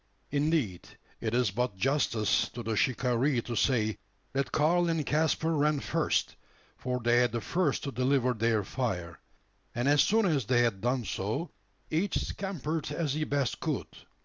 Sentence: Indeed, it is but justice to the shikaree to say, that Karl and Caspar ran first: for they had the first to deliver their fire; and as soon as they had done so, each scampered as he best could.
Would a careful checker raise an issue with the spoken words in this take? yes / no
no